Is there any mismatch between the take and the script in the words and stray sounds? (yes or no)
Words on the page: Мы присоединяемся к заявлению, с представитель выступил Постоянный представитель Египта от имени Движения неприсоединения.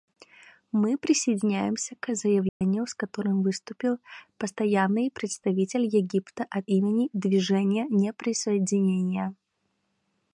yes